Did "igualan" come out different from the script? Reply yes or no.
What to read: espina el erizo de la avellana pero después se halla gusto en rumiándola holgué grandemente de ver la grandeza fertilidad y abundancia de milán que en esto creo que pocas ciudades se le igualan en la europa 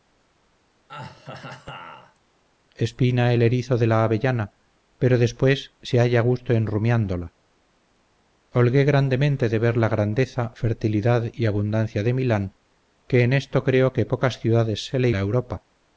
yes